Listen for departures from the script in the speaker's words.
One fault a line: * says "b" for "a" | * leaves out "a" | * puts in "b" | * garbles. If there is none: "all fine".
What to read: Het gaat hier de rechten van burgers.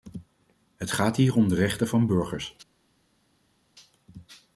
* puts in "om"